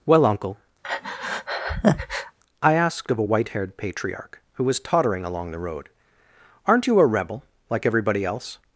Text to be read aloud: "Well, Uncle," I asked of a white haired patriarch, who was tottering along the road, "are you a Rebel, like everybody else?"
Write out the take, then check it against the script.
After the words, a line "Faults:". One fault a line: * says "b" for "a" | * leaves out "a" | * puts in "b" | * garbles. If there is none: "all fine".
"Well, Uncle," I asked of a white haired patriarch, who was tottering along the road, "aren't you a Rebel, like everybody else?"
Faults:
* says "aren't" for "are"